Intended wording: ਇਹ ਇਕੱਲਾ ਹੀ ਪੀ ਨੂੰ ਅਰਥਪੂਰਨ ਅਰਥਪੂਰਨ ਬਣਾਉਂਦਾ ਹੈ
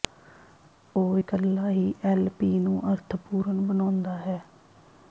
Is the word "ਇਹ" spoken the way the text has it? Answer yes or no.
no